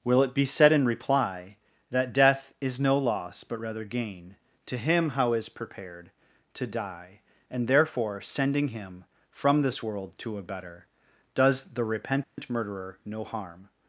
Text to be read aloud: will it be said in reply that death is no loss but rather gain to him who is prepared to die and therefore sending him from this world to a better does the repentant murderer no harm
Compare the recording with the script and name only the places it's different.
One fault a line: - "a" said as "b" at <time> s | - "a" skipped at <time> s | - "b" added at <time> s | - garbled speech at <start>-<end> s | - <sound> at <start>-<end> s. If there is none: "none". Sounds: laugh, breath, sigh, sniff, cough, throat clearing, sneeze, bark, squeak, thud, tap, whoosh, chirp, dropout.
- "who" said as "how" at 5.1 s
- dropout at 12.2-12.4 s